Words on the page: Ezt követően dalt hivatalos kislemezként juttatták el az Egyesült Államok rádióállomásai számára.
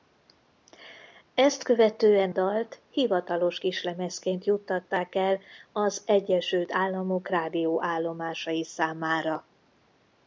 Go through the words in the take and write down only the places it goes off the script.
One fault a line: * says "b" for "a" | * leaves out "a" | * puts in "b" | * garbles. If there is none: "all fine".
all fine